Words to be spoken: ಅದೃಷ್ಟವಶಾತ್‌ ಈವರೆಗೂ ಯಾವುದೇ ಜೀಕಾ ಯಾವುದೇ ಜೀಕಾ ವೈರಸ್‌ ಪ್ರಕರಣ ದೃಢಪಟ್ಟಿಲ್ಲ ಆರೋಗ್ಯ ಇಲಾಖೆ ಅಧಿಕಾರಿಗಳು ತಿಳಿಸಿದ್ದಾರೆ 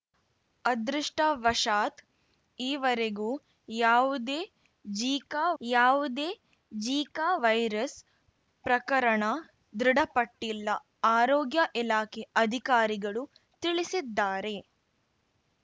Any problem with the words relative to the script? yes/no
no